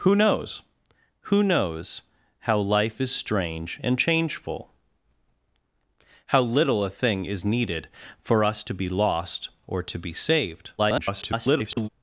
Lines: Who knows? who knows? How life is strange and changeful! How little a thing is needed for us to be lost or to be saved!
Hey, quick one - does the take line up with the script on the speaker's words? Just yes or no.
no